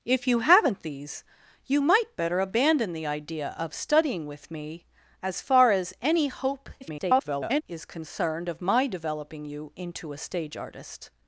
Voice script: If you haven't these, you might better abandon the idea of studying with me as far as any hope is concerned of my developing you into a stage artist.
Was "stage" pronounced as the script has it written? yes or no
yes